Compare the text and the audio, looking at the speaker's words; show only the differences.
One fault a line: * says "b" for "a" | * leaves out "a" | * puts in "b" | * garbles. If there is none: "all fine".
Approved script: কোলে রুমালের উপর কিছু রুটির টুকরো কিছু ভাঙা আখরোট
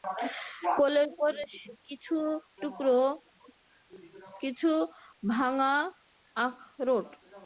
* leaves out "রুমালের"
* leaves out "রুটির"